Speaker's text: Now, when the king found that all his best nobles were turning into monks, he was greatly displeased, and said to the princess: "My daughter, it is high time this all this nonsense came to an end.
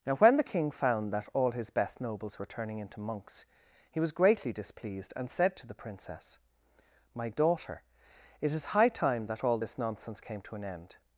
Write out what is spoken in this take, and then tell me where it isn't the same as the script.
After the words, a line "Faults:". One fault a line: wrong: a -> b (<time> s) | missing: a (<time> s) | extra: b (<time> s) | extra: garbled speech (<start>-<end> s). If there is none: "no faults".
Now, when the king found that all his best nobles were turning into monks, he was greatly displeased, and said to the princess: "My daughter, it is high time that all this nonsense came to an end.
Faults:
wrong: this -> that (9.3 s)